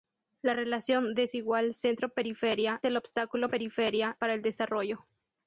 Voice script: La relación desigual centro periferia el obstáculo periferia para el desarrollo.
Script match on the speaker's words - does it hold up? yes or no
yes